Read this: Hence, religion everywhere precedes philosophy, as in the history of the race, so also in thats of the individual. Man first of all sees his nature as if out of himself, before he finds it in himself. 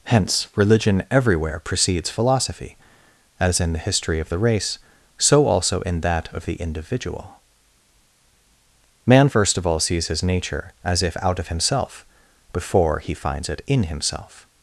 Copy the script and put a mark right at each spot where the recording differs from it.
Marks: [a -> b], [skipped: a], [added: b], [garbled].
Hence, religion everywhere precedes philosophy, as in the history of the race, so also in [thats -> that] of the individual. Man first of all sees his nature as if out of himself, before he finds it in himself.